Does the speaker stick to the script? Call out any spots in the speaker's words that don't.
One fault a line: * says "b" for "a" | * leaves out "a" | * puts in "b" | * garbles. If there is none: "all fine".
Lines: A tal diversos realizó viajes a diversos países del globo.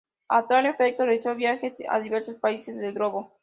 * says "efecto" for "diversos"